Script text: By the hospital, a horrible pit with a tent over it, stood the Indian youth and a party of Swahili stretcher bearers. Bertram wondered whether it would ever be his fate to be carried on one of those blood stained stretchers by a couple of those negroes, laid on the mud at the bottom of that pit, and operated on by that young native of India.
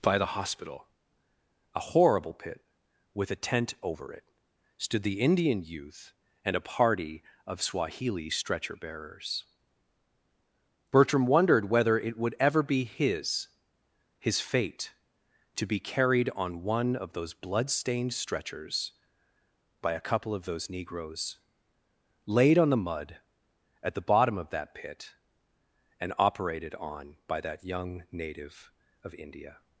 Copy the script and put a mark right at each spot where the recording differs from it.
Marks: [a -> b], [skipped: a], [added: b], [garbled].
By the hospital, a horrible pit with a tent over it, stood the Indian youth and a party of Swahili stretcher bearers. Bertram wondered whether it would ever be his [added: his] fate to be carried on one of those blood stained stretchers by a couple of those negroes, laid on the mud at the bottom of that pit, and operated on by that young native of India.